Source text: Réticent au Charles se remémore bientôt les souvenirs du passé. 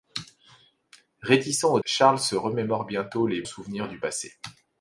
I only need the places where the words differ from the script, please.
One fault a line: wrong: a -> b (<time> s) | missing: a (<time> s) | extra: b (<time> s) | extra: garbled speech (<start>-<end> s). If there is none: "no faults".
no faults